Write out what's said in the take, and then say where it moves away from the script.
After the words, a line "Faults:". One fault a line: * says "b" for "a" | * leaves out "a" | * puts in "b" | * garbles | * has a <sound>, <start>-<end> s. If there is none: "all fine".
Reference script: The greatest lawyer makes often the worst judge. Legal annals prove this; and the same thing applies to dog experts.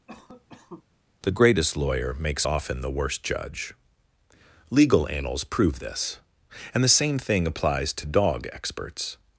The greatest lawyer makes often the worst judge. Legal annals prove this; and the same thing applies to dog experts.
Faults:
* has a cough, 0.1-0.8 s